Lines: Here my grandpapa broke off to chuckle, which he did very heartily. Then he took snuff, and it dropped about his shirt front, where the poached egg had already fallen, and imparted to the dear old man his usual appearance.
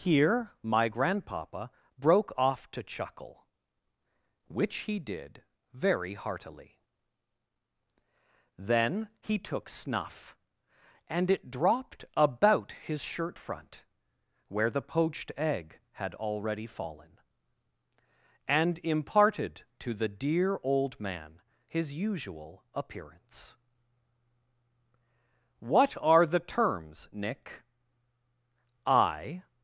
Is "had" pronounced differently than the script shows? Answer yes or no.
no